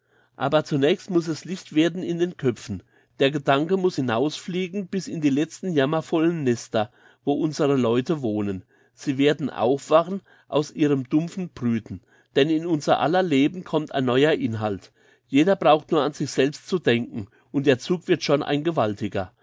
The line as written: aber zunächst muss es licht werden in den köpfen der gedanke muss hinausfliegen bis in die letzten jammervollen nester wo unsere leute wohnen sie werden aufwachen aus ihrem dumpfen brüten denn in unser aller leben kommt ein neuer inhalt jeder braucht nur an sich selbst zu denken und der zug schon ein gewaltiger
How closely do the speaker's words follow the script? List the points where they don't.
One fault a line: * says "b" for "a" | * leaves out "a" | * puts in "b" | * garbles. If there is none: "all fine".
* puts in "wird"